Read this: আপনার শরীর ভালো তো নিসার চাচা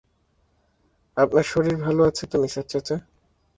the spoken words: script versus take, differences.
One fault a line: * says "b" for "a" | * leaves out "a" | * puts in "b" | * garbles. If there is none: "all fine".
* puts in "আছে"